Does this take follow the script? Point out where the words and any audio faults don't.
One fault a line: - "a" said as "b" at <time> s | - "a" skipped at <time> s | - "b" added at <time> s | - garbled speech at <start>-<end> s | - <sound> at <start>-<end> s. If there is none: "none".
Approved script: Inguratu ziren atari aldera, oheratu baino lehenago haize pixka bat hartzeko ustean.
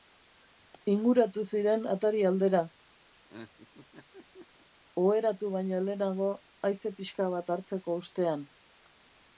- laugh at 3.1-4.7 s